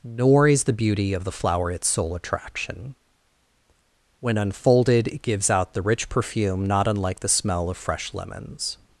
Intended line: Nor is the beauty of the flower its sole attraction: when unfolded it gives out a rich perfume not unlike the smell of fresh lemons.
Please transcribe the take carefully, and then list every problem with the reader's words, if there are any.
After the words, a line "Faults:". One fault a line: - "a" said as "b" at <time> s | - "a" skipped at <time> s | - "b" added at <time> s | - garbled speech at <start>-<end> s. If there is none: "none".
Nor is the beauty of the flower its sole attraction: when unfolded it gives out the rich perfume not unlike the smell of fresh lemons.
Faults:
- "a" said as "the" at 5.7 s